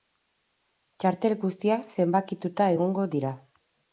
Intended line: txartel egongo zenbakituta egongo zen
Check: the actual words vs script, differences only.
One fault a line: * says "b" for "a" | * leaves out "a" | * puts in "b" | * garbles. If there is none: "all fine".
* says "guztiak" for "egongo"
* says "dira" for "zen"